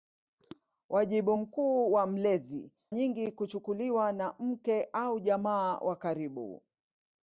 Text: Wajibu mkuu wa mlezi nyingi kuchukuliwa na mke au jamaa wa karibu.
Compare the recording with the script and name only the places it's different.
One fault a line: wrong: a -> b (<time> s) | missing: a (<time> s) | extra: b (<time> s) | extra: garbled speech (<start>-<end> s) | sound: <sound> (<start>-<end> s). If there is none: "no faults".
no faults